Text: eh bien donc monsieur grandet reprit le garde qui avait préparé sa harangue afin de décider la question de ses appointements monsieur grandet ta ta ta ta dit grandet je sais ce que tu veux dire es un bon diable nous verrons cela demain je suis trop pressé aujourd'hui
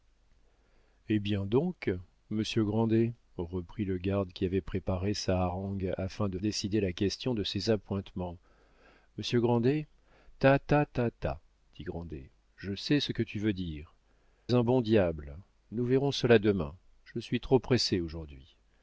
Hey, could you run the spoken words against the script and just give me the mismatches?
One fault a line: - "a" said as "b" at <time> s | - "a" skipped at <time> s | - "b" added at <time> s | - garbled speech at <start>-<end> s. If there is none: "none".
none